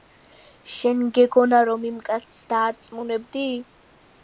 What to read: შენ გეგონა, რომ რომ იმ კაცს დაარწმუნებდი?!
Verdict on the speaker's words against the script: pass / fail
fail